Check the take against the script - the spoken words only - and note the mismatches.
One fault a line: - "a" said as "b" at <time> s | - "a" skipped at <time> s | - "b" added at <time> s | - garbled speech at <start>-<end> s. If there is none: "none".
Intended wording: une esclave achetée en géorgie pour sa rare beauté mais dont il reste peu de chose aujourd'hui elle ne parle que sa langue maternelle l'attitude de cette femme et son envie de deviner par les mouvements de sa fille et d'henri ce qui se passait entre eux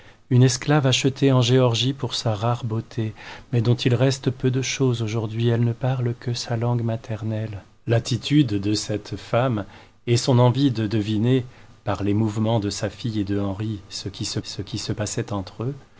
- "ce qui se" added at 14.4 s